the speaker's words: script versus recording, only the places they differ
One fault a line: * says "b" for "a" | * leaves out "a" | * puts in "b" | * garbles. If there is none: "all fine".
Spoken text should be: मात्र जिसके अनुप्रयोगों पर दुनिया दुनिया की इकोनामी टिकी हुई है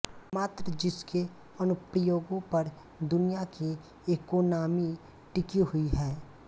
* leaves out "दुनिया"